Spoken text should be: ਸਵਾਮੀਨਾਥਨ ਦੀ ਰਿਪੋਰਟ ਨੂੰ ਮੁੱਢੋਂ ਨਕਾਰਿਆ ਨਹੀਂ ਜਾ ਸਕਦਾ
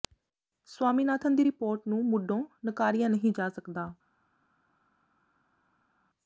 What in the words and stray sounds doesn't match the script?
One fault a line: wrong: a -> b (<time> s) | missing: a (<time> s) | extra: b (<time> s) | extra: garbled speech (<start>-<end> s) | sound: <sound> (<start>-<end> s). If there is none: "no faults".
no faults